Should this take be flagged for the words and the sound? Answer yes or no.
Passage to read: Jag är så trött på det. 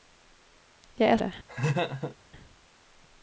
yes